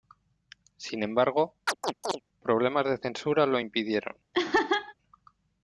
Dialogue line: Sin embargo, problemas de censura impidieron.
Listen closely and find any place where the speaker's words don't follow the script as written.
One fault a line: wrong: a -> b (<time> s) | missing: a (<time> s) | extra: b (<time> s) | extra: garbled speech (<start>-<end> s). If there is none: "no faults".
extra: lo (3.5 s)